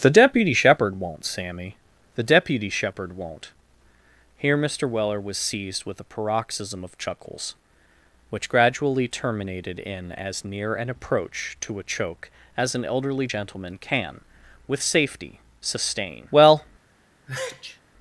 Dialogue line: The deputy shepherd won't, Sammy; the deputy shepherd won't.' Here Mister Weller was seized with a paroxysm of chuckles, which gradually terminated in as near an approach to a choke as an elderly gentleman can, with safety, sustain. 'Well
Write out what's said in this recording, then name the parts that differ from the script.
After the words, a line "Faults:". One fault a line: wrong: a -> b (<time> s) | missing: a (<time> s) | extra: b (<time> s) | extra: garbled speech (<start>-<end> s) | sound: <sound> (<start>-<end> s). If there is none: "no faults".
The deputy shepherd won't, Sammy; the deputy shepherd won't.' Here Mister Weller was seized with a paroxysm of chuckles, which gradually terminated in as near an approach to a choke as an elderly gentleman can, with safety, sustain. 'Well
Faults:
sound: sneeze (17.3-17.8 s)